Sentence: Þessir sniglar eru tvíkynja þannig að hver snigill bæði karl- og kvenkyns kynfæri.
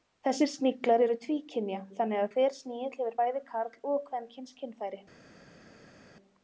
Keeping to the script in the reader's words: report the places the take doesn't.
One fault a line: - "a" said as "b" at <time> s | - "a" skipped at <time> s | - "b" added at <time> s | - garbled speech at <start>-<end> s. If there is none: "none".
- "hefur" added at 3.0 s